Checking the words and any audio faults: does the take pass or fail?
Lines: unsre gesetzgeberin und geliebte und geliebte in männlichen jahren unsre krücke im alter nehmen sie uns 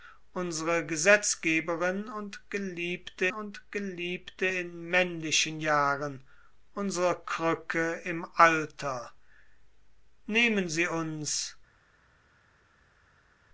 pass